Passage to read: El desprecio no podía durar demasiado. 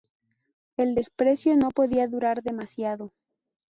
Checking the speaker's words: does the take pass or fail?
pass